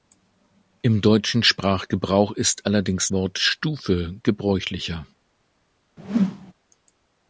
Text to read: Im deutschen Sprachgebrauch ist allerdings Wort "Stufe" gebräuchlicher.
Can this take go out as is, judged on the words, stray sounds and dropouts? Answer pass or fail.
fail